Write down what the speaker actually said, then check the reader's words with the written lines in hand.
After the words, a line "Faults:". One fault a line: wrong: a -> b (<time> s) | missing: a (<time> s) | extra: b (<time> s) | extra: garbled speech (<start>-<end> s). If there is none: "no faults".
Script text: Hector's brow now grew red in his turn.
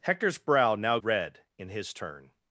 Hector's brow now red in his turn.
Faults:
missing: grew (1.0 s)